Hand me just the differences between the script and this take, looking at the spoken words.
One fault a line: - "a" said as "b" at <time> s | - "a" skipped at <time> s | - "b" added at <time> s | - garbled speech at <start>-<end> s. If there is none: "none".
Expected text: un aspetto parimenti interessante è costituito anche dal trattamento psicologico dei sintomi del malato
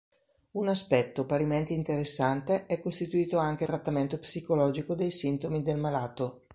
- "dal" skipped at 3.7 s